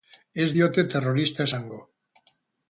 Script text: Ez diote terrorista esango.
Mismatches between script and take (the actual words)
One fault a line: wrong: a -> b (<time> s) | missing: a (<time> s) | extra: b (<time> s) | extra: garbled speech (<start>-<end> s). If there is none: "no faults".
no faults